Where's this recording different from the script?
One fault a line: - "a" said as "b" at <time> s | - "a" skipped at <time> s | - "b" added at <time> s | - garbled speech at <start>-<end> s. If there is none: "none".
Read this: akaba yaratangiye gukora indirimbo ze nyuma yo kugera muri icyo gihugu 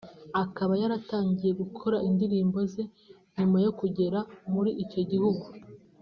none